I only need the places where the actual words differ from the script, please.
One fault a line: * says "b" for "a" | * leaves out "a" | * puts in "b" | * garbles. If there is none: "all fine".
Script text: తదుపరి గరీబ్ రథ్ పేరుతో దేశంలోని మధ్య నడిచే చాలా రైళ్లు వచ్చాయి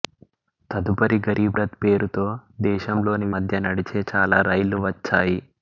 all fine